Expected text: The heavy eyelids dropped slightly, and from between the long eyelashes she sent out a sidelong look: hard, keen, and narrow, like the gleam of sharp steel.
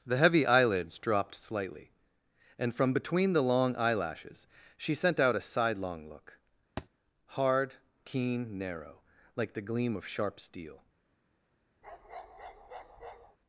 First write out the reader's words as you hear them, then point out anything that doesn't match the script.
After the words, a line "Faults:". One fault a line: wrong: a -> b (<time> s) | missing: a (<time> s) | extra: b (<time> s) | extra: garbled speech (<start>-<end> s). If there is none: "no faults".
The heavy eyelids dropped slightly, and from between the long eyelashes she sent out a sidelong look: hard, keen, narrow, like the gleam of sharp steel.
Faults:
missing: and (8.6 s)